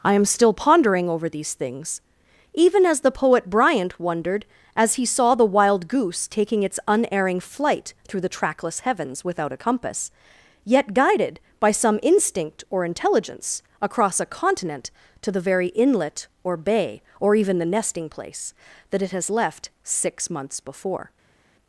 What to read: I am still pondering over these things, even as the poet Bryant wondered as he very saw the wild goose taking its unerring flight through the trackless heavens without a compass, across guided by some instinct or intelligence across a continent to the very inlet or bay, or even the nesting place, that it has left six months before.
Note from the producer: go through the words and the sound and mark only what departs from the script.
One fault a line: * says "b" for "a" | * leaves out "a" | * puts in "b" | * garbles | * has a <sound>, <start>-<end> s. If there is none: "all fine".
* leaves out "very"
* says "yet" for "across"